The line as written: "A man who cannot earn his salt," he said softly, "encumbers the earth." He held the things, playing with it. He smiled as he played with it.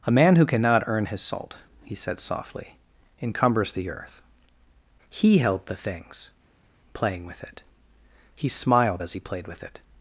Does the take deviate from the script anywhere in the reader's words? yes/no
no